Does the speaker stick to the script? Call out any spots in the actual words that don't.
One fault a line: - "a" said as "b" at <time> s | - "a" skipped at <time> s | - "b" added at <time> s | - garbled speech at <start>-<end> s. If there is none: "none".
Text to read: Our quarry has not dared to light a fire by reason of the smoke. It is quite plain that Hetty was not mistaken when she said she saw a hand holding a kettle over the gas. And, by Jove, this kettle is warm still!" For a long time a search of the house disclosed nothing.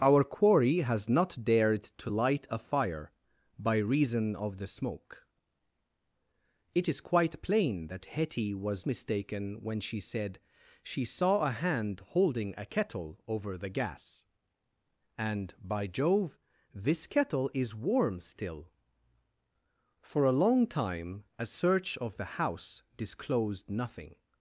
- "not" skipped at 8.9 s